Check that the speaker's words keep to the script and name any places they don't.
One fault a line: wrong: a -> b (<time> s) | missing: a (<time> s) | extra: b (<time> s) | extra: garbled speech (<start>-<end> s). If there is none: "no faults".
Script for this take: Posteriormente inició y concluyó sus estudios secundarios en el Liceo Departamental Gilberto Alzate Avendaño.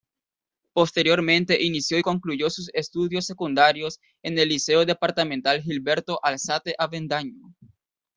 no faults